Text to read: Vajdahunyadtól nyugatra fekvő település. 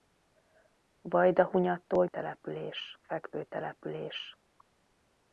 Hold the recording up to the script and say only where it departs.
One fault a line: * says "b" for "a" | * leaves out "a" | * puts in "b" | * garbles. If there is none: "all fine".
* says "település" for "nyugatra"